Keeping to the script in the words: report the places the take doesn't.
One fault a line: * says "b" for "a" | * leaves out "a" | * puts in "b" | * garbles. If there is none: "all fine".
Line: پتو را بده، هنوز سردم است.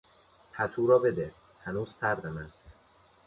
all fine